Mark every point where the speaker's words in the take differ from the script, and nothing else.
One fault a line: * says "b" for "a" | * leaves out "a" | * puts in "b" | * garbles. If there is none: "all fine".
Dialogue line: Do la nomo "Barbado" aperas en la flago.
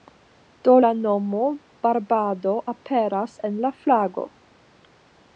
all fine